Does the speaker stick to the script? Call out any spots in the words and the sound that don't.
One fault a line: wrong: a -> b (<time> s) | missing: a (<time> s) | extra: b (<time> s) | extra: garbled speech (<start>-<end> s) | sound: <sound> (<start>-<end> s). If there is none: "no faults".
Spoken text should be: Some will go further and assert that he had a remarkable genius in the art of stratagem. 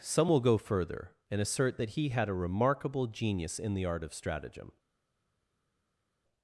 no faults